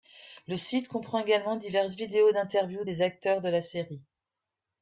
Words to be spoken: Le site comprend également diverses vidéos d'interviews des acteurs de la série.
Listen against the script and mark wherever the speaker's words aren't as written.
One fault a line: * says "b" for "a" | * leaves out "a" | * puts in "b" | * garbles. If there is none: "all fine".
all fine